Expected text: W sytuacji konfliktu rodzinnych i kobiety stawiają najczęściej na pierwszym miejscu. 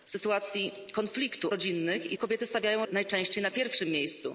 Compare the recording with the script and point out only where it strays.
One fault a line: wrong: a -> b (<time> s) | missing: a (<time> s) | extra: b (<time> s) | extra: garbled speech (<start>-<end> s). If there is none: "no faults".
no faults